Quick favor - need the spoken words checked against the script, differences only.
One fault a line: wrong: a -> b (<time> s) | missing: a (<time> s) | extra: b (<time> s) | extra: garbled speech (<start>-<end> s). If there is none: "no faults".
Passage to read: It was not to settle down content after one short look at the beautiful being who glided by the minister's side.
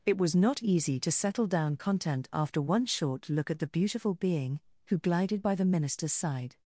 extra: easy (0.6 s)